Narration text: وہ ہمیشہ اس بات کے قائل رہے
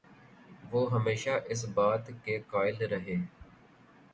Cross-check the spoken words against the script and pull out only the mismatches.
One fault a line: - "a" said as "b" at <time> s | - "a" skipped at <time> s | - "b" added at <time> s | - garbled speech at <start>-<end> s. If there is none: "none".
none